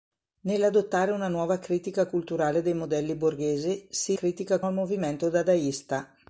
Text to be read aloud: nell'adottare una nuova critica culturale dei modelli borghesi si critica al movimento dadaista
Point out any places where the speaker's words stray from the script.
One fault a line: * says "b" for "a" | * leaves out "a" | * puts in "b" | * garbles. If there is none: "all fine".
all fine